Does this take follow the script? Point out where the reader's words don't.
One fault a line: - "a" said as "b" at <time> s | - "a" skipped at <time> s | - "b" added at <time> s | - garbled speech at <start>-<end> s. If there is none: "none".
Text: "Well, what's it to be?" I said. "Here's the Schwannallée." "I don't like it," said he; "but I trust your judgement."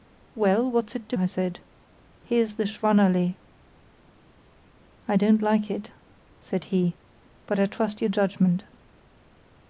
- "be" skipped at 1.1 s